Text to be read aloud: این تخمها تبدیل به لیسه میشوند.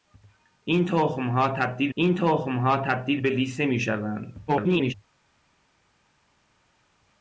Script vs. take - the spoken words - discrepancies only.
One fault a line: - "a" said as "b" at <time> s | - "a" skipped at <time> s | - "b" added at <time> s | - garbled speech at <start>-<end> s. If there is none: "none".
- "این تخمها تبدیل" added at 1.9 s
- garbled speech at 4.5-4.9 s